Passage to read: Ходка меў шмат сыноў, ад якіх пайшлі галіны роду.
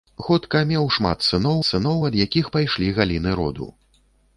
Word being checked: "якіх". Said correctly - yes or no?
yes